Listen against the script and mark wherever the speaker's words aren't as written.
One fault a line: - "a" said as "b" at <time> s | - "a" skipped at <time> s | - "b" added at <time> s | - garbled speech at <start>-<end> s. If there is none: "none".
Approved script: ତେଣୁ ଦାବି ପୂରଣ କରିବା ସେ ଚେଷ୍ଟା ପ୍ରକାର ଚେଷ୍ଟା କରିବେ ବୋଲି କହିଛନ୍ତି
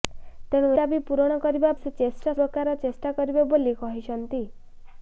none